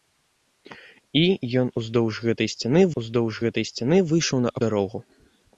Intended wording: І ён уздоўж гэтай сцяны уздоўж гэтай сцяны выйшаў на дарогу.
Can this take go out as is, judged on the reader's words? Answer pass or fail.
pass